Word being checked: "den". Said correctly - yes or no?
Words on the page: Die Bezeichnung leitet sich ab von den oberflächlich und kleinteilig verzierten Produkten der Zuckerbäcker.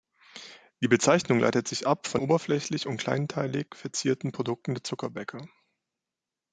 no